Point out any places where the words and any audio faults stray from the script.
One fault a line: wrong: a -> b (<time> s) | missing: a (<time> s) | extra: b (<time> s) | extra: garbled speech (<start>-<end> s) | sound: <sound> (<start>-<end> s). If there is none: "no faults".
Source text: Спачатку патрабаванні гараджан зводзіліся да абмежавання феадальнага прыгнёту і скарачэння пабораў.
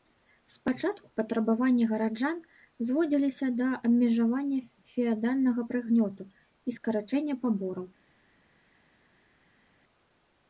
no faults